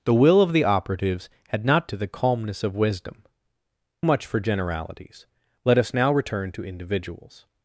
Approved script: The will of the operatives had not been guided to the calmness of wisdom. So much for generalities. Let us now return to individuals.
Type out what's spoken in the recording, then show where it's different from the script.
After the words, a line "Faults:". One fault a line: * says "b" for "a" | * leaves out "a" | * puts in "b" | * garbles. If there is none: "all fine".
The will of the operatives had not to the calmness of wisdom. Much for generalities. Let us now return to individuals.
Faults:
* leaves out "been guided"
* leaves out "So"